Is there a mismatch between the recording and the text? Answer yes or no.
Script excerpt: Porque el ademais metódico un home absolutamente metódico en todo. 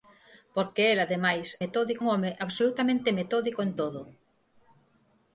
no